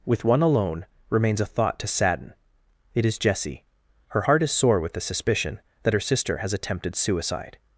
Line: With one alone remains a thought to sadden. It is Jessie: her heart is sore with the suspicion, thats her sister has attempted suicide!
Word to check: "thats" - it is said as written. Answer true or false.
false